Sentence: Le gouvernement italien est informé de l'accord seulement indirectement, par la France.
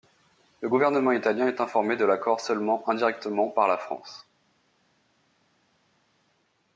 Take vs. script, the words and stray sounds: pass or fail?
pass